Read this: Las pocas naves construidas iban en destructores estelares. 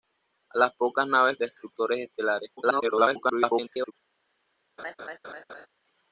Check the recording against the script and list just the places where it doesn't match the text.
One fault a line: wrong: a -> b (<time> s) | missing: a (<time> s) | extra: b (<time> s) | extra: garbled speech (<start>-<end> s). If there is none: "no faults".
missing: construidas iban en (1.4 s)
extra: garbled speech (2.6-3.9 s)